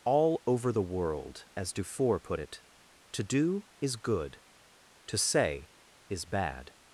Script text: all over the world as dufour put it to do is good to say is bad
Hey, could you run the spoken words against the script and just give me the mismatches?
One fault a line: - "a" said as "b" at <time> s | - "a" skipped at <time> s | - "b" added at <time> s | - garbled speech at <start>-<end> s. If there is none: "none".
none